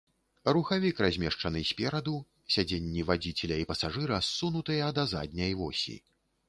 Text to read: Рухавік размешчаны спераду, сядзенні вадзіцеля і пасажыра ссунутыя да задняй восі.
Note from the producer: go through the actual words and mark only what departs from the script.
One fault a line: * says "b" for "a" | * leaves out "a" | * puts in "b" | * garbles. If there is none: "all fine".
all fine